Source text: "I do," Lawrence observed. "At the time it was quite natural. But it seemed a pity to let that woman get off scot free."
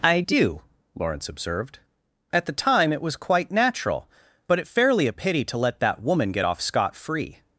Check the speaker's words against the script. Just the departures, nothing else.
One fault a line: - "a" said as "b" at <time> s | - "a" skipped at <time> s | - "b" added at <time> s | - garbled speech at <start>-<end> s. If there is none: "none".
- "seemed" said as "fairly" at 4.7 s